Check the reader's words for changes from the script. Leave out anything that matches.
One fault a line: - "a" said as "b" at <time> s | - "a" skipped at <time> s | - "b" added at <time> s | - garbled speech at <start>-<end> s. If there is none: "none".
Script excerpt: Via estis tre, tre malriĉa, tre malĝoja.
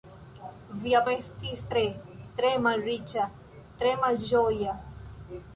none